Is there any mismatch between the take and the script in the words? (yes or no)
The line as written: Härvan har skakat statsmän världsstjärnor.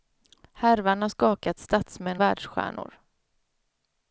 no